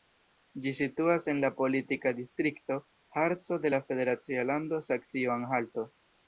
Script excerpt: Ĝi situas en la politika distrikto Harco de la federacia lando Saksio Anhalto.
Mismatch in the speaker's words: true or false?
false